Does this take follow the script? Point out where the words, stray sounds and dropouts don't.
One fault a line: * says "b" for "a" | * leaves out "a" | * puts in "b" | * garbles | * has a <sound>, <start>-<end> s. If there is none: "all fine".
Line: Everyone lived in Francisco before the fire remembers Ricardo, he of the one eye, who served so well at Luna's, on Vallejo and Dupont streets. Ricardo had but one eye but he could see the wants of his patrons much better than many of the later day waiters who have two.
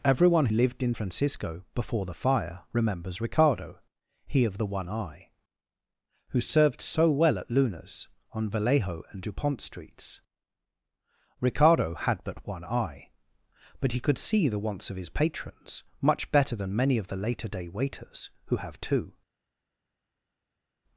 all fine